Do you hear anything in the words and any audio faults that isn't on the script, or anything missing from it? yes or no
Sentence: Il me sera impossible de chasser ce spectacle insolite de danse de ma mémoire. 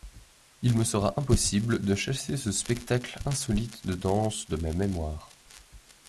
no